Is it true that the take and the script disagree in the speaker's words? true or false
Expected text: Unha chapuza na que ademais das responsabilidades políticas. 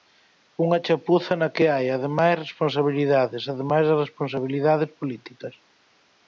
true